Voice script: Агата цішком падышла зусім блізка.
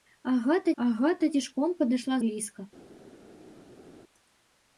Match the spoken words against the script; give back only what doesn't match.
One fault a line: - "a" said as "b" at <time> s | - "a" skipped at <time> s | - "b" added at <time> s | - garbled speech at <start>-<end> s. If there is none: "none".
- "агата" added at 0.8 s
- "зусім" skipped at 2.2 s